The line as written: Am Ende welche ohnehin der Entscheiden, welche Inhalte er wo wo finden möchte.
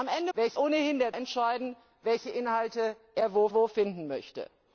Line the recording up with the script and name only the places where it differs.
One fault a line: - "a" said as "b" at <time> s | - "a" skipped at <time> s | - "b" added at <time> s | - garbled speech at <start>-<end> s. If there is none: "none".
none